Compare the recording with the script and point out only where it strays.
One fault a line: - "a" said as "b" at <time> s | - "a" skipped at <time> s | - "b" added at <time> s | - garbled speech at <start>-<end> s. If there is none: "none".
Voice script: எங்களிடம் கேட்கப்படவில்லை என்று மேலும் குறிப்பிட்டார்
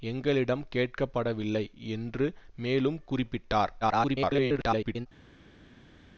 - garbled speech at 3.8-5.1 s